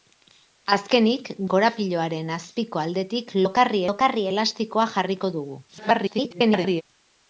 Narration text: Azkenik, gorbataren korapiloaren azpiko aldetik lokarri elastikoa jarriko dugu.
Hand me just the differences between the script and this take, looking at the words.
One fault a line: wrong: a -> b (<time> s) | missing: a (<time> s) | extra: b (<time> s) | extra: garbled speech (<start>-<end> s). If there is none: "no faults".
missing: gorbataren (1.3 s)
extra: lokarri (3.9 s)
extra: garbled speech (5.7-6.8 s)